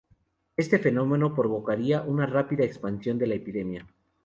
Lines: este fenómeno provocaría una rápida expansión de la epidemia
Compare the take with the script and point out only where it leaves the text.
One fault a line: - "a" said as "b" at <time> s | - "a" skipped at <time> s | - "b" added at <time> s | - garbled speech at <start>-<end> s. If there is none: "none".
none